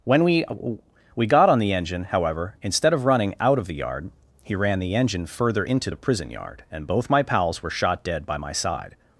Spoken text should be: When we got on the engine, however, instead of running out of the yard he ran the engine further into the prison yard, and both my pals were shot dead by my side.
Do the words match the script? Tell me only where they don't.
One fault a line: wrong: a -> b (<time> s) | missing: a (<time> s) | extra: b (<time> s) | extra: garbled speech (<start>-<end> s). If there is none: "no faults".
extra: we (1.1 s)